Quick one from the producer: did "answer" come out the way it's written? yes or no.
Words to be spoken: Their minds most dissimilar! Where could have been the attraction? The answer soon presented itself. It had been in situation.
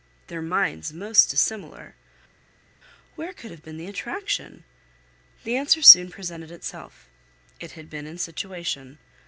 yes